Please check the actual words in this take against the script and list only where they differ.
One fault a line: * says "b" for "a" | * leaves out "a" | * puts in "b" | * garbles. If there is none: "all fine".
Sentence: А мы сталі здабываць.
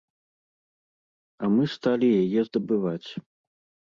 * puts in "яе"